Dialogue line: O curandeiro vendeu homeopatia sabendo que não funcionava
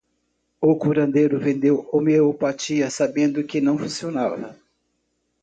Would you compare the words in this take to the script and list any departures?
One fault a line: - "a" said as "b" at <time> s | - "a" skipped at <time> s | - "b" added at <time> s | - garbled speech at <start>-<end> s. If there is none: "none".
none